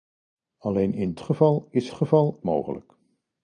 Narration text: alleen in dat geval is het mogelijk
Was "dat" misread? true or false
true